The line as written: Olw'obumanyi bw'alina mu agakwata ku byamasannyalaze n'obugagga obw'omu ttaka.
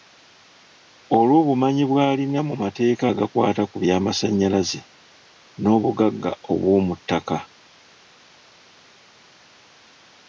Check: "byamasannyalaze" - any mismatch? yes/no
no